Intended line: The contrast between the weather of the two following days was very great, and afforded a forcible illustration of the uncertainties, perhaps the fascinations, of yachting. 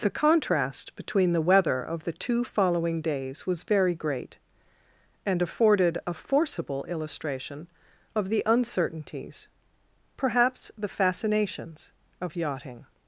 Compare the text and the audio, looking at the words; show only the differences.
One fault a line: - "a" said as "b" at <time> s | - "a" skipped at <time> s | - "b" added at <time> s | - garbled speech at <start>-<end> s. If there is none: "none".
none